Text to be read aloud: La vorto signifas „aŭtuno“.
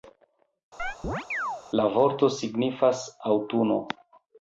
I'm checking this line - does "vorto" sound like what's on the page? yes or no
yes